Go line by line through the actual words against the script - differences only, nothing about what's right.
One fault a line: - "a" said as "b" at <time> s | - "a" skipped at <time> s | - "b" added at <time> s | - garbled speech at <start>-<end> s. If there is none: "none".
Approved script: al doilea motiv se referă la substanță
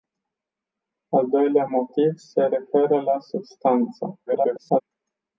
- garbled speech at 4.3-4.8 s